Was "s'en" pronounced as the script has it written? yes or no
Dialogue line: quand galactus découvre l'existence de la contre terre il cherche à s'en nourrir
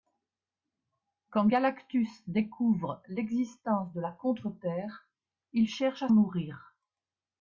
no